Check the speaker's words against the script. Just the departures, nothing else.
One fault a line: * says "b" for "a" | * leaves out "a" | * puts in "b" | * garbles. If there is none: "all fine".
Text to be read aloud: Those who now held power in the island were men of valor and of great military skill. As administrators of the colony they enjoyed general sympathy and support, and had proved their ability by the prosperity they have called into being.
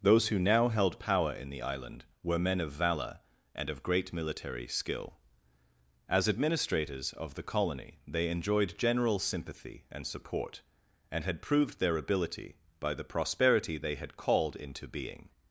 * says "had" for "have"